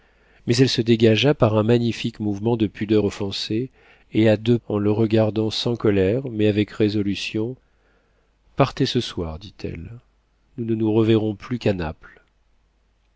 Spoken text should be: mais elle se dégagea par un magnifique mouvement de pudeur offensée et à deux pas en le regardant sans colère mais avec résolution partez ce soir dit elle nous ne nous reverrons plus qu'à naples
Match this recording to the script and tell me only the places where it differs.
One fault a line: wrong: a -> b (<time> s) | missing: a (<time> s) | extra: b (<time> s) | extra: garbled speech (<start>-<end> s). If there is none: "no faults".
missing: pas (4.6 s)